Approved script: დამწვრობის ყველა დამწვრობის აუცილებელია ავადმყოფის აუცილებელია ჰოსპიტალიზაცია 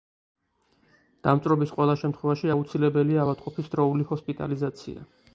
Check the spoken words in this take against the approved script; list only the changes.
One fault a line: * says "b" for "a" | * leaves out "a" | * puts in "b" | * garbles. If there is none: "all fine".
* says "შემთხვევაში" for "დამწვრობის"
* says "დროული" for "აუცილებელია"